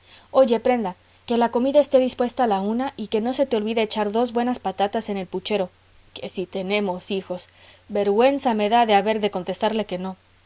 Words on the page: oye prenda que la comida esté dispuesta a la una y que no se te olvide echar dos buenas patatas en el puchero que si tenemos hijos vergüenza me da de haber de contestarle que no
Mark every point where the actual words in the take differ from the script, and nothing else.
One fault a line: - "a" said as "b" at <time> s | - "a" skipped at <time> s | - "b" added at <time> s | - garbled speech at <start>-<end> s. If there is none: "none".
none